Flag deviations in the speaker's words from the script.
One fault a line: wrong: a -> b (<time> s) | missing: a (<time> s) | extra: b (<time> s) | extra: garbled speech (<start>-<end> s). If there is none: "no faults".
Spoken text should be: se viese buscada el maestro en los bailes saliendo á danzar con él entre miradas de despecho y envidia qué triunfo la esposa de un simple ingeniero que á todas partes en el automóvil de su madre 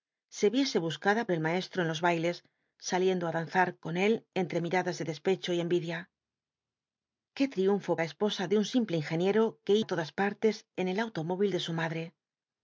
no faults